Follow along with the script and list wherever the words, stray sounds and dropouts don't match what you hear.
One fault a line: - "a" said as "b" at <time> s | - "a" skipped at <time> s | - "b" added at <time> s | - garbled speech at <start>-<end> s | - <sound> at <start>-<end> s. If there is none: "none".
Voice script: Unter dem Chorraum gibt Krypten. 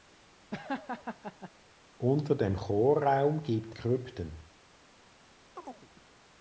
- laugh at 0.5-1.5 s
- chirp at 5.6-5.9 s